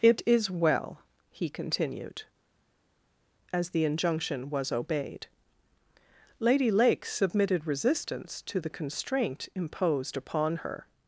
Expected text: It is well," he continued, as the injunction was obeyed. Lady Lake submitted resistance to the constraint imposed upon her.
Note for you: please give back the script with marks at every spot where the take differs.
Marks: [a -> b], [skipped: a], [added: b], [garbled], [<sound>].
It is well," he continued, as the injunction was obeyed. Lady Lake submitted resistance to the constraint imposed upon her.